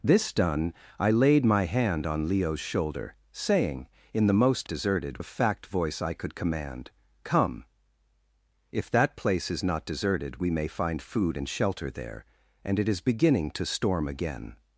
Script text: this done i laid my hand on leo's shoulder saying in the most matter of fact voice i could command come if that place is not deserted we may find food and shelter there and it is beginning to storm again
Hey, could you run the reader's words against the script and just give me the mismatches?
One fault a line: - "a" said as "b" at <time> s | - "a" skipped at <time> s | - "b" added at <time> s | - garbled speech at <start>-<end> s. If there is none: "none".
- "matter" said as "deserted" at 4.7 s